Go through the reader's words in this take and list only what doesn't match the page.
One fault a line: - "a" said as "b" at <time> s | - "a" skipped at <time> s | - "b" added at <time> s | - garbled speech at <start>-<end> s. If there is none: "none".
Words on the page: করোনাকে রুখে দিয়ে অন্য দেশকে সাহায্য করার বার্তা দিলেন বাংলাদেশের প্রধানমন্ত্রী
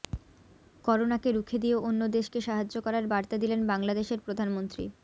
none